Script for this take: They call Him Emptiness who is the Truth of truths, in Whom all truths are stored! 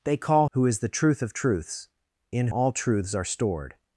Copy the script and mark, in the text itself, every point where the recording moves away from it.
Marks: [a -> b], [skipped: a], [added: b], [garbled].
They call [skipped: Him Emptiness] who is the Truth of truths, in [skipped: Whom] all truths are stored!